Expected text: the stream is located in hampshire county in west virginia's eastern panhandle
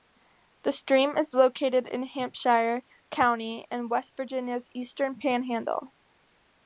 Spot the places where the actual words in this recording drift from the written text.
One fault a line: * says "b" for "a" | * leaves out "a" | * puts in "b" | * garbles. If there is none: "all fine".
all fine